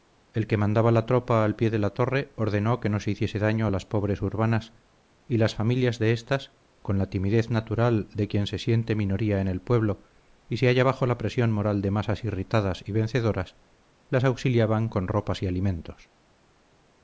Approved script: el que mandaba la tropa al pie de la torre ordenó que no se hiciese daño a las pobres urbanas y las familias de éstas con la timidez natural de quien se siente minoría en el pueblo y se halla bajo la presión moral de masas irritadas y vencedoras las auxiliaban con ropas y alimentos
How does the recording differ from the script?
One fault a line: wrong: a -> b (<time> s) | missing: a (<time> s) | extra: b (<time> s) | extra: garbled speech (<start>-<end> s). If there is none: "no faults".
no faults